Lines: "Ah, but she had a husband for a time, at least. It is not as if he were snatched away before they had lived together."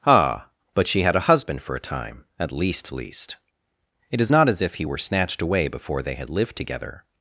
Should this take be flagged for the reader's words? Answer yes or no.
yes